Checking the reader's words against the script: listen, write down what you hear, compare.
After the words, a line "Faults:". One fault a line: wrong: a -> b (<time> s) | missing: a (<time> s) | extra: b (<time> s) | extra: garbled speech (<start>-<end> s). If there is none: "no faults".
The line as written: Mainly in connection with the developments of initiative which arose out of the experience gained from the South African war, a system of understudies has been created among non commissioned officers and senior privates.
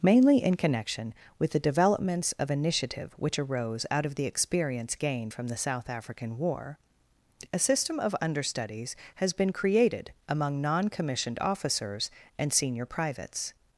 Mainly in connection with the developments of initiative which arose out of the experience gained from the South African war, a system of understudies has been created among non commissioned officers and senior privates.
Faults:
no faults